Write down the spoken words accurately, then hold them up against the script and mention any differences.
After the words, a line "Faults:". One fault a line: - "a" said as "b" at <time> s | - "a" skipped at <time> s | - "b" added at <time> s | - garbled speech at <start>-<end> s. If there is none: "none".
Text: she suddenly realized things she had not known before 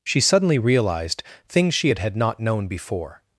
she suddenly realized things she had had not known before
Faults:
- "had" added at 2.0 s